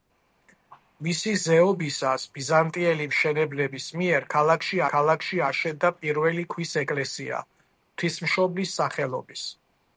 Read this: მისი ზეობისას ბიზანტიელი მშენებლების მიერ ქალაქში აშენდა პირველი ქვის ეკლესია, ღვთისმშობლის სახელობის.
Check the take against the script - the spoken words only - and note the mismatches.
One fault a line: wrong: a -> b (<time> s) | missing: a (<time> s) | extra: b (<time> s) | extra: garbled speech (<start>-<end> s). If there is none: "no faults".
extra: ქალაქში (4.9 s)